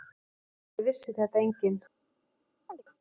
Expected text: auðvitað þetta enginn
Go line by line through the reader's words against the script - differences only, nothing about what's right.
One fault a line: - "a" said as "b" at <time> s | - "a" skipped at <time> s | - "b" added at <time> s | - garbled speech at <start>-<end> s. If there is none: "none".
- "vissi" added at 0.9 s